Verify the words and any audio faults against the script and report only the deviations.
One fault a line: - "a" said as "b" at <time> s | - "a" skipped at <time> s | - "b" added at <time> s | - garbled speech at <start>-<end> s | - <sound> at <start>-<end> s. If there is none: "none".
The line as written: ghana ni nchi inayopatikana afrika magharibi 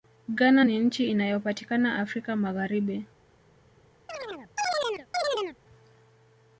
- chirp at 4.1-5.6 s